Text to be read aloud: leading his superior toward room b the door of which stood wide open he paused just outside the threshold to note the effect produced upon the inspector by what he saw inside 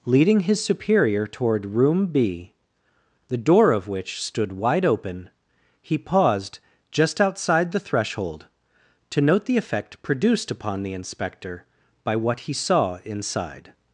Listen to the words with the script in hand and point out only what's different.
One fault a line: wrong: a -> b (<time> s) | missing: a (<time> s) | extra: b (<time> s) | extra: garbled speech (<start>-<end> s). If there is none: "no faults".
no faults